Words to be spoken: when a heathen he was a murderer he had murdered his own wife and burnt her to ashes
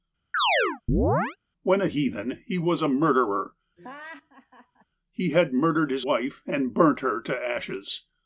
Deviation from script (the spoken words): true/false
true